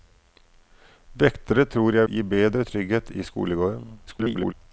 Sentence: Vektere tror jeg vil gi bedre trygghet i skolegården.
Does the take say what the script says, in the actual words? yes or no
no